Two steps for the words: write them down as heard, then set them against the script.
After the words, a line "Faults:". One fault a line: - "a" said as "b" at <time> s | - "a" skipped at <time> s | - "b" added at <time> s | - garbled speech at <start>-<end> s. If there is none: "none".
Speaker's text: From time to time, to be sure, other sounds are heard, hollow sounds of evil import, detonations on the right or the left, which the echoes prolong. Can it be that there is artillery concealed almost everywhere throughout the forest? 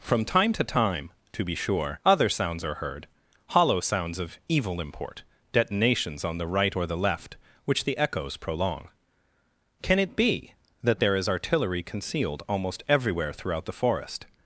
From time to time, to be sure, other sounds are heard, hollow sounds of evil import, detonations on the right or the left, which the echoes prolong. Can it be that there is artillery concealed almost everywhere throughout the forest?
Faults:
none